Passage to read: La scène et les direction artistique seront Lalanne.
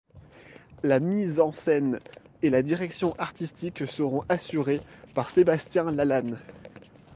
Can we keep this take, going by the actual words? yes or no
no